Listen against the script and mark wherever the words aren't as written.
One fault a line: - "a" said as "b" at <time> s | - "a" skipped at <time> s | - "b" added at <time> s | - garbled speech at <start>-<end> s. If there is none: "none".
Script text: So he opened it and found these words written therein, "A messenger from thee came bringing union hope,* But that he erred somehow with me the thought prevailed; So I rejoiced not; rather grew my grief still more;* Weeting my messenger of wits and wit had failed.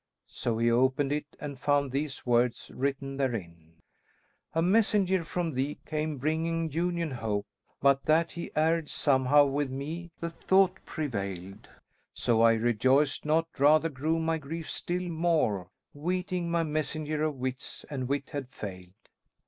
none